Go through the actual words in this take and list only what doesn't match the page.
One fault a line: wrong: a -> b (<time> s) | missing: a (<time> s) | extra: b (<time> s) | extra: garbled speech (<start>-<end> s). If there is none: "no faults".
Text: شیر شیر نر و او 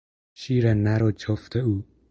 missing: شیر (0.7 s)
extra: جفت (1.1 s)